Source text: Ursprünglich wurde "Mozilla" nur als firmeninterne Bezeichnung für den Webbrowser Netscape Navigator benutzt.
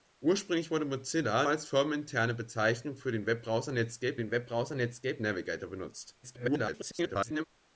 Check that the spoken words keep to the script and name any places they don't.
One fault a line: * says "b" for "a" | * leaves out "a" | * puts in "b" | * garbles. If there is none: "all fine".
* leaves out "nur"
* puts in "den Webbrowser Netscape"
* garbles